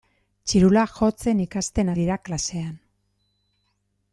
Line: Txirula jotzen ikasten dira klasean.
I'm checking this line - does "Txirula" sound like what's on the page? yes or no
yes